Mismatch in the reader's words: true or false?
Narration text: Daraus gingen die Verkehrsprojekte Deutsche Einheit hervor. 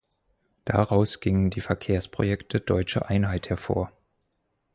false